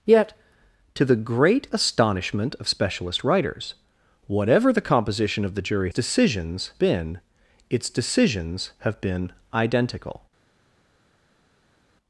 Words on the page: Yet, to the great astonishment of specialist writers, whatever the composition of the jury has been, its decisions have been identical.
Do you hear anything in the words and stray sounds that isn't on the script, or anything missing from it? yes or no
yes